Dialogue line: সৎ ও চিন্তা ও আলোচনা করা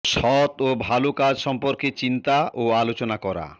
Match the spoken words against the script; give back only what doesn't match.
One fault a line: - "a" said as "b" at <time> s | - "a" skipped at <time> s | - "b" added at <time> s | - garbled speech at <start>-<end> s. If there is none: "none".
- "ভালো কাজ সম্পর্কে" added at 0.8 s